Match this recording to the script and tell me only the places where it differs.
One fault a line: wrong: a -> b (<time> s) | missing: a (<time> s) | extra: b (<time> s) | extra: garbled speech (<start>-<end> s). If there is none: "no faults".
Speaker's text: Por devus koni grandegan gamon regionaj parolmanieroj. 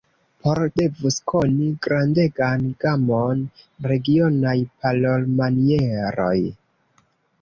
no faults